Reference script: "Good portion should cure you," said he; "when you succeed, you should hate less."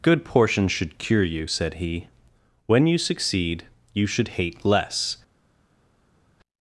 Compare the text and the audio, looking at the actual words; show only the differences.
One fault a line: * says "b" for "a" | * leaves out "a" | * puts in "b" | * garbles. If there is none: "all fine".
all fine